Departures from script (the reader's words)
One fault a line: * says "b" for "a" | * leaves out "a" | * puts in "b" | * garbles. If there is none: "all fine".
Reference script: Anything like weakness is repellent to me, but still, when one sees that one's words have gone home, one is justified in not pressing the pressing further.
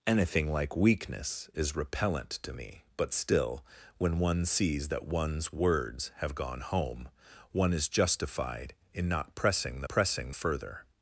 all fine